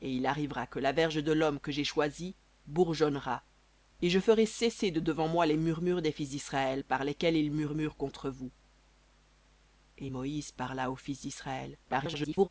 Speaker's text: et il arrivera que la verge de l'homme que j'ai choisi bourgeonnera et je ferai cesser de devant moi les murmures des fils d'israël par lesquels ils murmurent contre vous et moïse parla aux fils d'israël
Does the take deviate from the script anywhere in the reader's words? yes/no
yes